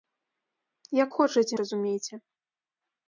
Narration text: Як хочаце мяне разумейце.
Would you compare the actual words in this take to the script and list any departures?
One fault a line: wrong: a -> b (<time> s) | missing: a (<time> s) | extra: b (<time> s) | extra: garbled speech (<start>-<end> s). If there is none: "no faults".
missing: мяне (1.5 s)